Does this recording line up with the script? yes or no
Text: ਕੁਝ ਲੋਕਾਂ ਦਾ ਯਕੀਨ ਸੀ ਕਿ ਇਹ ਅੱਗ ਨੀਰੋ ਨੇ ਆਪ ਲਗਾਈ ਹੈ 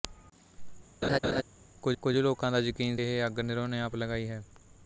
no